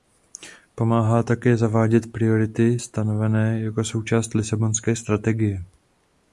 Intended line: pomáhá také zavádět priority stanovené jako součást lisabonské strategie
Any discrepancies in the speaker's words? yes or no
no